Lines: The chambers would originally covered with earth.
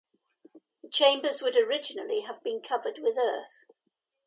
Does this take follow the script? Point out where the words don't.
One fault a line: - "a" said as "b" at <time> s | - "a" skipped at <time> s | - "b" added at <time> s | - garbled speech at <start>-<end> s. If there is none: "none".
- "have been" added at 2.2 s